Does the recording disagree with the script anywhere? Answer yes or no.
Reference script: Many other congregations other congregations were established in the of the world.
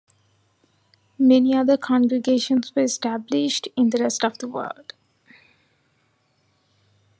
yes